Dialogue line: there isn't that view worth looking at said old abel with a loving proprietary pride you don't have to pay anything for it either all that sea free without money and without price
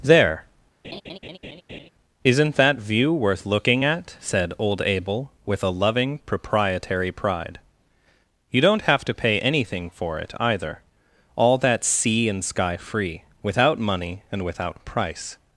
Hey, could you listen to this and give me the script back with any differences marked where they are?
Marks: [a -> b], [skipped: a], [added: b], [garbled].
there isn't that view worth looking at said old abel with a loving proprietary pride you don't have to pay anything for it either all that sea [added: and sky] free without money and without price